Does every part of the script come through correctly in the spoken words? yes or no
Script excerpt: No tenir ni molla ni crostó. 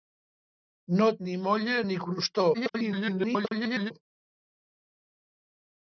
no